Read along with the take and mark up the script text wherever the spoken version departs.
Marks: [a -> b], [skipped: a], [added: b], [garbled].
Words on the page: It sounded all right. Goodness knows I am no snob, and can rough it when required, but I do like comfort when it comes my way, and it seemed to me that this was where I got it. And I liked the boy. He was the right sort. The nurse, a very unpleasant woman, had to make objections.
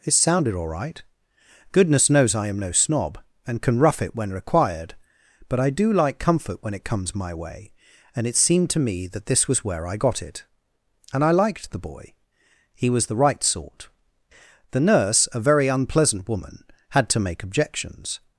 It sounded all right. Goodness knows I am no snob, and can rough it when required, but I do like comfort when it comes my way, and it seemed to me that this was where I got it. And I liked the boy. He was the right sort. The nurse, a very unpleasant woman, had to make objections.